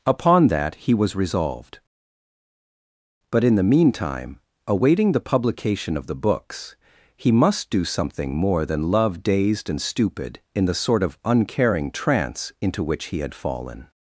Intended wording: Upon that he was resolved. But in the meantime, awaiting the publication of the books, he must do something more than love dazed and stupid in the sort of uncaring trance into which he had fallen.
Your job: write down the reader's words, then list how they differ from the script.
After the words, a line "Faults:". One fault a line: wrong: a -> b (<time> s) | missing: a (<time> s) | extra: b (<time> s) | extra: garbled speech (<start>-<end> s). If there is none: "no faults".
Upon that he was resolved. But in the meantime, awaiting the publication of the books, he must do something more than love dazed and stupid in the sort of uncaring trance into which he had fallen.
Faults:
no faults